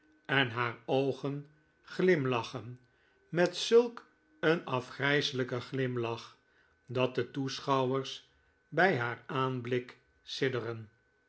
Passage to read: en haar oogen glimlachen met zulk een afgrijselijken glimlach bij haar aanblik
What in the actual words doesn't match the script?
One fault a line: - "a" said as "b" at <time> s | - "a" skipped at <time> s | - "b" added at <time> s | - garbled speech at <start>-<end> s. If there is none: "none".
- "dat de toeschouwers" added at 6.8 s